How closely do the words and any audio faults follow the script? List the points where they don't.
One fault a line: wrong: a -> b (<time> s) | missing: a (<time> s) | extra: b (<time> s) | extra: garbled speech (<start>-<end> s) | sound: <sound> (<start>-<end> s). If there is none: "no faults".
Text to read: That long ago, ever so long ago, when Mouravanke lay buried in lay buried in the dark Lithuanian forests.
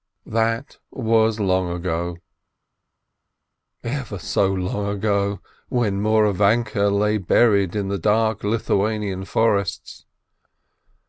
extra: was (0.9 s)
missing: lay buried in (7.9 s)